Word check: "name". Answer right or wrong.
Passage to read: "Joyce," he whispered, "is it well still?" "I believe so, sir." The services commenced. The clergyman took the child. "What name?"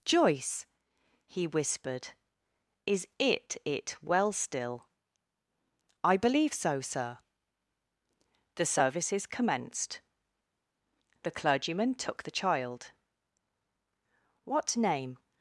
right